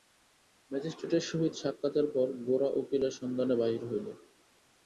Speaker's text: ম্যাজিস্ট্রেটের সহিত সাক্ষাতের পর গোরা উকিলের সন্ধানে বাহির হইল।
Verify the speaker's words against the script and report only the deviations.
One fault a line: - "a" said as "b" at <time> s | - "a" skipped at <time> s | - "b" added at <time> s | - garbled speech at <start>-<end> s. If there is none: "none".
none